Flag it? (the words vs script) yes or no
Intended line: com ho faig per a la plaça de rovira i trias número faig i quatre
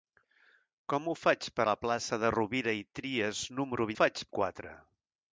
no